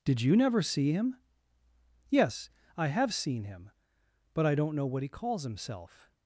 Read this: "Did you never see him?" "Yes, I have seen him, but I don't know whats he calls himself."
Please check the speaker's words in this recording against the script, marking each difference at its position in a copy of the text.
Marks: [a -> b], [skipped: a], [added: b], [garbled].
"Did you never see him?" "Yes, I have seen him, but I don't know [whats -> what] he calls himself."